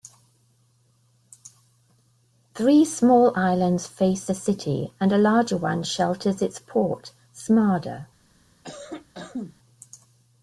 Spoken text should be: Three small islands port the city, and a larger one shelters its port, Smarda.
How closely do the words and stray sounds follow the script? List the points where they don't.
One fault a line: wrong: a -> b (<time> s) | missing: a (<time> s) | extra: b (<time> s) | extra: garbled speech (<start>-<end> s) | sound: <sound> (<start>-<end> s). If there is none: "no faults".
wrong: port -> face (3.8 s)
sound: cough (8.6-9.6 s)